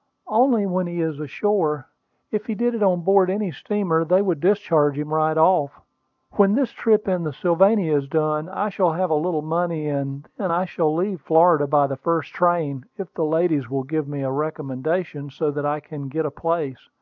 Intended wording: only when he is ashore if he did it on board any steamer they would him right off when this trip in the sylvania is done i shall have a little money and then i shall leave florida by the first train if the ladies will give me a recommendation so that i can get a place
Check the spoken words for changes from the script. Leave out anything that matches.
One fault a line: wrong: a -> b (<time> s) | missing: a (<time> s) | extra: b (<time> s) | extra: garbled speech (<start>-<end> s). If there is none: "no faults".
extra: discharge (4.4 s)